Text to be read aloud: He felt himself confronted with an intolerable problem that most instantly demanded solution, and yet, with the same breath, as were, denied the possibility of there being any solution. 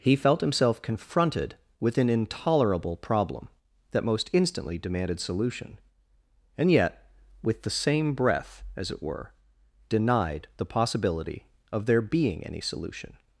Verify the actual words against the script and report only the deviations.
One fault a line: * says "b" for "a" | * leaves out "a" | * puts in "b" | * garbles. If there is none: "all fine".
* puts in "it"